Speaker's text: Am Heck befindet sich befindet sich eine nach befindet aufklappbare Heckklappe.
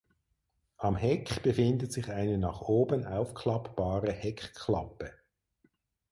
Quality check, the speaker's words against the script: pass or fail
fail